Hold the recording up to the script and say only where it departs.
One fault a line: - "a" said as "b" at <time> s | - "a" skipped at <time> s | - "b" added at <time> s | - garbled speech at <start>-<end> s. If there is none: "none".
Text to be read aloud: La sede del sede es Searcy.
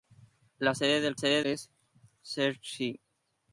none